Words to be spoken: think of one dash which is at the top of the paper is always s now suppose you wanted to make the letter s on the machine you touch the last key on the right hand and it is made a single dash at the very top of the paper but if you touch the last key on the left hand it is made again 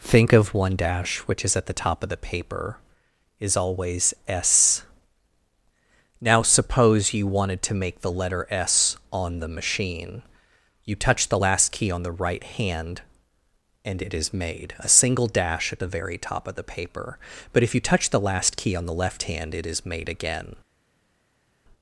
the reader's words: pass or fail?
pass